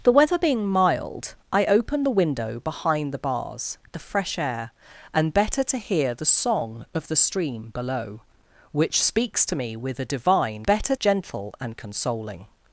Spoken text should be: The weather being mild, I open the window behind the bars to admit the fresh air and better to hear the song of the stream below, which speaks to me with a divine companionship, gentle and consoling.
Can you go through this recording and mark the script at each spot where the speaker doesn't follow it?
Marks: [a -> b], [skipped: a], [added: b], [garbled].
The weather being mild, I open the window behind the bars [skipped: to admit] the fresh air and better to hear the song of the stream below, which speaks to me with a divine [companionship, -> better] gentle and consoling.